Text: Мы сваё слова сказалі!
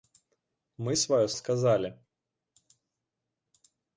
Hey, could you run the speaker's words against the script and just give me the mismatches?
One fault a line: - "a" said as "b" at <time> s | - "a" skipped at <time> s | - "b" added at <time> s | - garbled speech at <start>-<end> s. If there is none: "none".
- "слова" skipped at 1.3 s